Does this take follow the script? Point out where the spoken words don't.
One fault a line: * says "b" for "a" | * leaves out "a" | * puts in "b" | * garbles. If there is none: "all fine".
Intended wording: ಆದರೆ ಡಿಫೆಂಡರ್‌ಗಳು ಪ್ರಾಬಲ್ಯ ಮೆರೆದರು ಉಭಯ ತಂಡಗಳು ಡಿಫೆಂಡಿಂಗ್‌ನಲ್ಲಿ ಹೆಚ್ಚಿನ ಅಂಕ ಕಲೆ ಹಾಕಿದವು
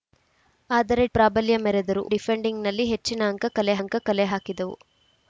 * leaves out "ಡಿಫೆಂಡರ್‌ಗಳು"
* says "ಡಿಫೆಂಡಿಂಗ್‌ನಲ್ಲಿ ಹೆಚ್ಚಿನ ಅಂಕ ಕಲೆ" for "ಉಭಯ ತಂಡಗಳು ಡಿಫೆಂಡಿಂಗ್‌ನಲ್ಲಿ ಹೆಚ್ಚಿನ"